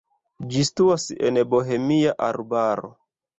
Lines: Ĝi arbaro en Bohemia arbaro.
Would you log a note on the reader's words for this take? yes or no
yes